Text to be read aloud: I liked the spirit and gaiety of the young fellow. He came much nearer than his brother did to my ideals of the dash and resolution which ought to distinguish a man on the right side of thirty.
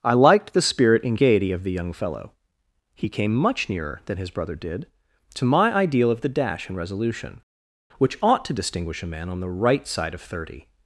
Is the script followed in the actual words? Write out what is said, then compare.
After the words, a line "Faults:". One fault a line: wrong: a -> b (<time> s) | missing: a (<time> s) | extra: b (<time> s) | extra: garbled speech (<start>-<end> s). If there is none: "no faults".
I liked the spirit and gaiety of the young fellow. He came much nearer than his brother did to my ideal of the dash and resolution which ought to distinguish a man on the right side of thirty.
Faults:
wrong: ideals -> ideal (5.7 s)